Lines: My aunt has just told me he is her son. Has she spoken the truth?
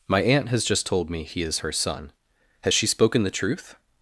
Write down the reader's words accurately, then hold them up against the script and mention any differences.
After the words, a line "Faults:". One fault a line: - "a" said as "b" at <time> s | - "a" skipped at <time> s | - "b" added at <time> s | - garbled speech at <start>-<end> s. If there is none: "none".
My aunt has just told me he is her son. Has she spoken the truth?
Faults:
none